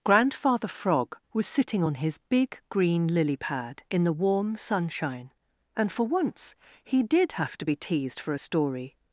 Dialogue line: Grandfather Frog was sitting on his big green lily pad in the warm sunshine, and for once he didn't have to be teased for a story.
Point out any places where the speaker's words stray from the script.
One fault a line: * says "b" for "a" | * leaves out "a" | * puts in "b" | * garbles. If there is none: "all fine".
* says "did" for "didn't"